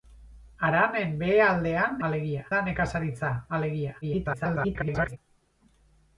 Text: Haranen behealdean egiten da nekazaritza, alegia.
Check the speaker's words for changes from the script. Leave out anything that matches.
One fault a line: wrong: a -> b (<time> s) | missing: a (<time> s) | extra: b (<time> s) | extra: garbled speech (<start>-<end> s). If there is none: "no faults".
wrong: egiten -> alegia (2.1 s)
extra: garbled speech (4.0-5.2 s)